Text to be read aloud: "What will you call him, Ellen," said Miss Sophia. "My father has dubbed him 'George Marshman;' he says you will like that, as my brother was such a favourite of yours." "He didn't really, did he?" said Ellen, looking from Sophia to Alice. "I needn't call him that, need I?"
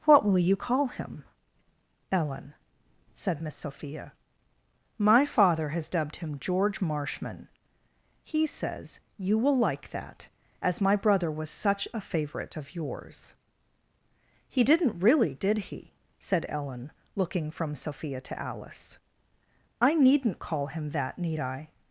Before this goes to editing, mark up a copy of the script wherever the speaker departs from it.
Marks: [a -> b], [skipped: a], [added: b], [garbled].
"What will you call him, Ellen," said Miss Sophia. "My father has dubbed him 'George Marshman;' he says you will like that, as my brother was such a favourite of yours." "He didn't really, did he?" said Ellen, looking from Sophia to Alice. "I needn't call him that, need I?"